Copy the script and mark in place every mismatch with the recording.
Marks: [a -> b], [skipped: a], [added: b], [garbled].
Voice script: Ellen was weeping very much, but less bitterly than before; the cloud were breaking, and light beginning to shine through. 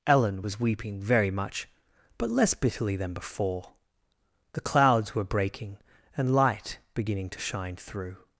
Ellen was weeping very much, but less bitterly than before; the [cloud -> clouds] were breaking, and light beginning to shine through.